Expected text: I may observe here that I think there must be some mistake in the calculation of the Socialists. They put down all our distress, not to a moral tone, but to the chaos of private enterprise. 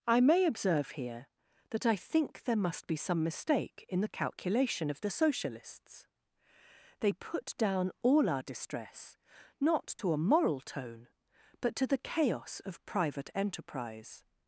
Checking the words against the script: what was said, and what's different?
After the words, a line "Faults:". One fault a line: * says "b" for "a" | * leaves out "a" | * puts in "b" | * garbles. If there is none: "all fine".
I may observe here that I think there must be some mistake in the calculation of the Socialists. They put down all our distress, not to a moral tone, but to the chaos of private enterprise.
Faults:
all fine